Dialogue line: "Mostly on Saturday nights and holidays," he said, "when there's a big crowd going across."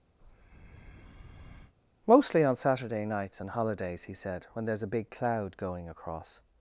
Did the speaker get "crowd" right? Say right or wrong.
wrong